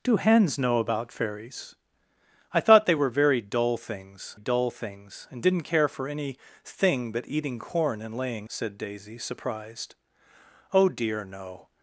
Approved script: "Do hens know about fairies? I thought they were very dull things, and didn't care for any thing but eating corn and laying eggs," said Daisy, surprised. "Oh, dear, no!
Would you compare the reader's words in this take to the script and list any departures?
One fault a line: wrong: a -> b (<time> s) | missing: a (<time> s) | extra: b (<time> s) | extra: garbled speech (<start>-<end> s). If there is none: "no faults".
extra: dull things (4.4 s)
missing: eggs (8.5 s)